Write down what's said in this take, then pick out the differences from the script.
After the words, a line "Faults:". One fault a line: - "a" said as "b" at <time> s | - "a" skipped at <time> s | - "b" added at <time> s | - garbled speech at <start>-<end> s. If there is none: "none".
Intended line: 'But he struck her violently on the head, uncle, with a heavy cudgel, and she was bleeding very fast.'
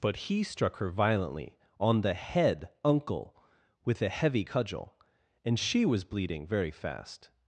'But he struck her violently on the head, uncle, with a heavy cudgel, and she was bleeding very fast.'
Faults:
none